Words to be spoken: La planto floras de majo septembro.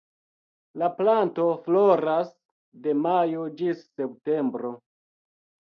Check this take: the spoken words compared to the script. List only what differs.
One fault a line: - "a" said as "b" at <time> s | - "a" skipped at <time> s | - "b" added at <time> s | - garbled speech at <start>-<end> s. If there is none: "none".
- "ĝis" added at 3.6 s